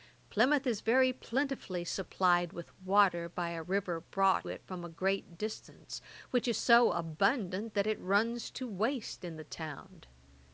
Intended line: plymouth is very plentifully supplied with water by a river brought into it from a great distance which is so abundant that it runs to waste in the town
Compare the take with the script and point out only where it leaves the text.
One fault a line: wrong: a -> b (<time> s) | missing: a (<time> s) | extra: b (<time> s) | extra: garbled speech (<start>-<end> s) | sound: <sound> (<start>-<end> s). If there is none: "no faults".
missing: into (4.5 s)